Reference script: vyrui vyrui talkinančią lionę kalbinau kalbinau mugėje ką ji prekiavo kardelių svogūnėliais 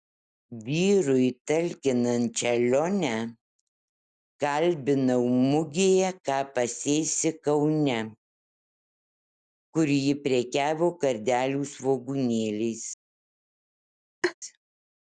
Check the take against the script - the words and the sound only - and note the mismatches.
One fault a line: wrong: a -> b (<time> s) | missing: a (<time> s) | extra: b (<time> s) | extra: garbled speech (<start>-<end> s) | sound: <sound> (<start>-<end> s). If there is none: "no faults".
missing: vyrui (1.3 s)
missing: kalbinau (5.2 s)
extra: pasėsi kaune kur (6.5 s)
sound: laugh (14.2-14.3 s)